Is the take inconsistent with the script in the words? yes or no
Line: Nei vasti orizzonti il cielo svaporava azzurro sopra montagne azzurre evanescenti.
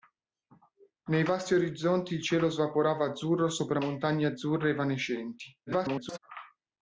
yes